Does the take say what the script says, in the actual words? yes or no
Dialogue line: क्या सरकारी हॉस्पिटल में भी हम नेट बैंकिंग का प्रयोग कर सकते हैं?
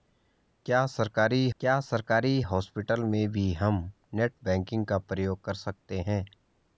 no